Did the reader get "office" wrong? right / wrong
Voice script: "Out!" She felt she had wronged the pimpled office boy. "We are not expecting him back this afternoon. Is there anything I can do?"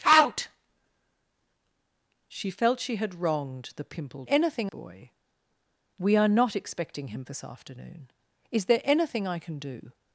wrong